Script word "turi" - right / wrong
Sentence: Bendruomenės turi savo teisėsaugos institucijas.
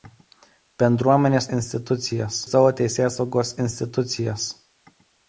wrong